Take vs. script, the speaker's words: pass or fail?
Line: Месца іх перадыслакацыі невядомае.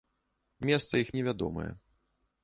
fail